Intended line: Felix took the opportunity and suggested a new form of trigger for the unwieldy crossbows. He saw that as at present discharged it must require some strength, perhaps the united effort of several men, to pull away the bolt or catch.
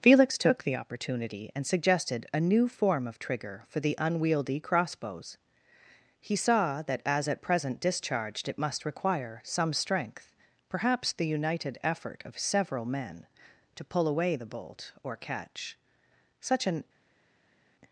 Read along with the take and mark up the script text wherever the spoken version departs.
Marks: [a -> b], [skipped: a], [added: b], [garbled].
Felix took the opportunity and suggested a new form of trigger for the unwieldy crossbows. He saw that as at present discharged it must require some strength, perhaps the united effort of several men, to pull away the bolt or catch. [added: Such an]